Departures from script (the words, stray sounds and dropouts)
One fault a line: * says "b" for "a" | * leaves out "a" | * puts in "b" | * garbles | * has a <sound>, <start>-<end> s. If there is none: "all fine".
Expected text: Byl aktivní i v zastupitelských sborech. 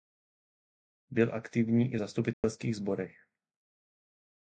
* has a dropout, 2.3-2.4 s